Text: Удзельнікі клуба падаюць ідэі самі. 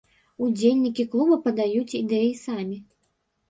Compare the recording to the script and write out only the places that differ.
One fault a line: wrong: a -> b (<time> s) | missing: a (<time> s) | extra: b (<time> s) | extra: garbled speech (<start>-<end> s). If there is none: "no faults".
no faults